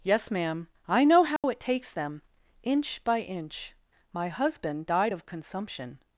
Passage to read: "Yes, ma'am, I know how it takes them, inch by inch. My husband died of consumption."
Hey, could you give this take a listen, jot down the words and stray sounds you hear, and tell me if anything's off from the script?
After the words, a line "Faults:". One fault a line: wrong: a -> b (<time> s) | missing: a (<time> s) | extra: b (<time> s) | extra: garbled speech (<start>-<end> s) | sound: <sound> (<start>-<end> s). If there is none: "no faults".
"Yes, ma'am, I know how it takes them, inch by inch. My husband died of consumption."
Faults:
sound: dropout (1.4-1.4 s)